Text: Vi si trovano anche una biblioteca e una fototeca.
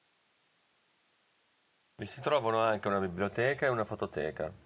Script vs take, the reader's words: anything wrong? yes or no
no